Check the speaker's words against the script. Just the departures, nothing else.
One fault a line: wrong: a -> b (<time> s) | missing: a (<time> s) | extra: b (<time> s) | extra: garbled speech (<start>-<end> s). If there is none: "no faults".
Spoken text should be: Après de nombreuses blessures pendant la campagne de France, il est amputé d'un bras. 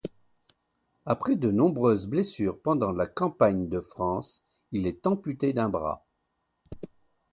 no faults